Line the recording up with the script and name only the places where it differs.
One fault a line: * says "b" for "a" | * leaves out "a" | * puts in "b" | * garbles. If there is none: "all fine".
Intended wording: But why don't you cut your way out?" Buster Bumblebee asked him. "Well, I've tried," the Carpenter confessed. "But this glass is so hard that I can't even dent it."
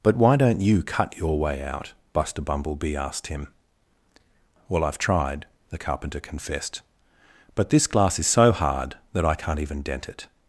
all fine